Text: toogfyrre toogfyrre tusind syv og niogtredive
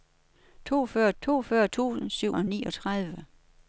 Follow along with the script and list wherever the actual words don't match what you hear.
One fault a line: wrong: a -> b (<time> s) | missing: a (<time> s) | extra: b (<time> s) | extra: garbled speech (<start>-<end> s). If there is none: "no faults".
no faults